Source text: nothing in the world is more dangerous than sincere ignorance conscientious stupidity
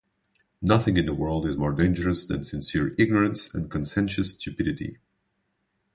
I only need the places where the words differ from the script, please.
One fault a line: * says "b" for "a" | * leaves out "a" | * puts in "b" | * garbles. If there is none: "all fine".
* puts in "and"